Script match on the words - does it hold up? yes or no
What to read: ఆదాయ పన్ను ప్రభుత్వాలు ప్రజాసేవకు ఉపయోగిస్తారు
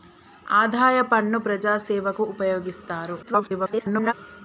no